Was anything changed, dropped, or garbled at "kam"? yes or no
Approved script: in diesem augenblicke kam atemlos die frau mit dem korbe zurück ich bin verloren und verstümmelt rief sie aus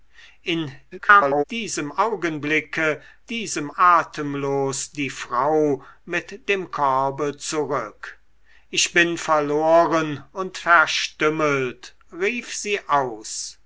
yes